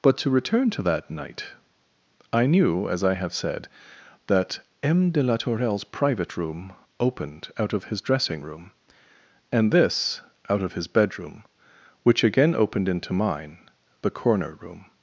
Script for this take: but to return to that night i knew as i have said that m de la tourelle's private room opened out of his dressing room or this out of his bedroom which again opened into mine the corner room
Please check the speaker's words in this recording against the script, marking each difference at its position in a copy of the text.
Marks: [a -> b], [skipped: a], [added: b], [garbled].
but to return to that night i knew as i have said that m de la tourelle's private room opened out of his dressing room [or -> and] this out of his bedroom which again opened into mine the corner room